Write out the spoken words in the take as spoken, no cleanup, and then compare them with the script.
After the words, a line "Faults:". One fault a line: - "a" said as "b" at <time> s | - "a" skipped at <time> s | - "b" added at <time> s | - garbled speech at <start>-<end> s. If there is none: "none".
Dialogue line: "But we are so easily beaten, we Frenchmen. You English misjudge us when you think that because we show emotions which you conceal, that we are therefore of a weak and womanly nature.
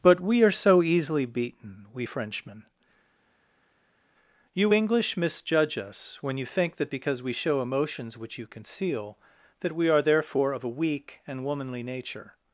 "But we are so easily beaten, we Frenchmen. You English misjudge us when you think that because we show emotions which you conceal, that we are therefore of a weak and womanly nature.
Faults:
none